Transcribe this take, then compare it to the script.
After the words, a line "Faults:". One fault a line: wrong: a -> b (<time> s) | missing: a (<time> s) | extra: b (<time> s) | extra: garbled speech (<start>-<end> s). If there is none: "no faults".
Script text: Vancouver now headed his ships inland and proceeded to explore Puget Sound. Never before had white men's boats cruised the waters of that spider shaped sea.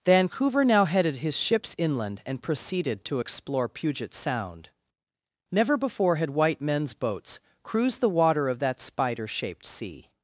Vancouver now headed his ships inland and proceeded to explore Puget Sound. Never before had white men's boats cruised the water of that spider shaped sea.
Faults:
wrong: waters -> water (8.1 s)